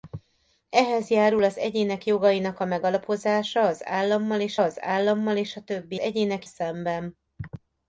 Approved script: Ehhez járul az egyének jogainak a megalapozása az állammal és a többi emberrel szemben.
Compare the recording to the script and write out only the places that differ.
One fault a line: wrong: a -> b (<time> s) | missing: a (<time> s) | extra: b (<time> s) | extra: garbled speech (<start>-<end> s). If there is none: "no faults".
extra: az állammal és (4.6 s)
wrong: emberrel -> egyének (6.0 s)